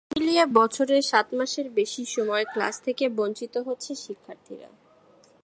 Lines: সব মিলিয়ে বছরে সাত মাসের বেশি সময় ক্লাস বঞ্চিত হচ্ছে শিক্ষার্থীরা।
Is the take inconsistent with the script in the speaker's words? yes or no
yes